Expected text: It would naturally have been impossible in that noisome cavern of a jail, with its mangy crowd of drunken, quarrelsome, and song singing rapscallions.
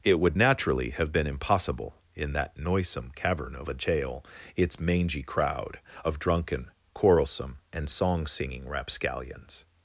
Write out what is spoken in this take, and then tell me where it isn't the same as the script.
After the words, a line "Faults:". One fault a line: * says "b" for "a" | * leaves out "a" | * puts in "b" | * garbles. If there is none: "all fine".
It would naturally have been impossible in that noisome cavern of a jail, its mangy crowd of drunken, quarrelsome, and song singing rapscallions.
Faults:
* leaves out "with"